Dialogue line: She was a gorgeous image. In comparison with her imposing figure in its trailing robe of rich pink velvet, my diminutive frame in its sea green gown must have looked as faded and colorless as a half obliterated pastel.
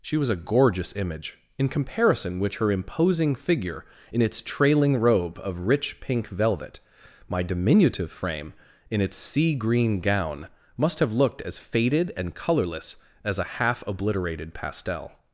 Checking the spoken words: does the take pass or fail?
fail